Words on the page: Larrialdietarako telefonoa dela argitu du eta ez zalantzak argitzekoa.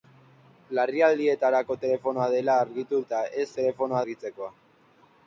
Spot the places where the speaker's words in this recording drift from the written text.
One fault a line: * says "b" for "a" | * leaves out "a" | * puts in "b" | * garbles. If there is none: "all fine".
* leaves out "du"
* says "telefonoa" for "zalantzak"